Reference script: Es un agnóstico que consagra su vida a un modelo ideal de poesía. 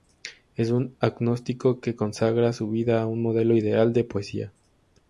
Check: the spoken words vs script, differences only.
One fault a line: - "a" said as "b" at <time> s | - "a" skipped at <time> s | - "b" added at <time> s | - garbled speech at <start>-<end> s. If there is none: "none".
none